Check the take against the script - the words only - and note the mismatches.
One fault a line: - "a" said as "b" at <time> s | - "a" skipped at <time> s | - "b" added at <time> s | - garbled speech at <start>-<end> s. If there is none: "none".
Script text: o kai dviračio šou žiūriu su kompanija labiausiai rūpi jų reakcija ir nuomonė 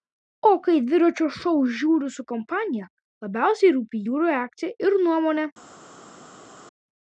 none